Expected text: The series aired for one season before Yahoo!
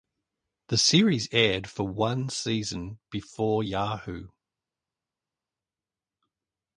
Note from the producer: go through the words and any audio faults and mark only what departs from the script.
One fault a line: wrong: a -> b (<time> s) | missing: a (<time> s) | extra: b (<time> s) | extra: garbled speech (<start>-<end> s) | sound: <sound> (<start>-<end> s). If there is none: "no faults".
no faults